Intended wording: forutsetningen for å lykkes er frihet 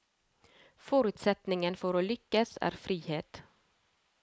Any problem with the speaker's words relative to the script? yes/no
no